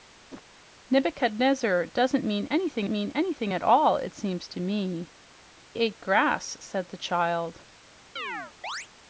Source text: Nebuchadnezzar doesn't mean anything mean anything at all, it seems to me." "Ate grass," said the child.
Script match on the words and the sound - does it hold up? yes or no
no